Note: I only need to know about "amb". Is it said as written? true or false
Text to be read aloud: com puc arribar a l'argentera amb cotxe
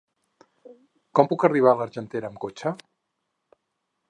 true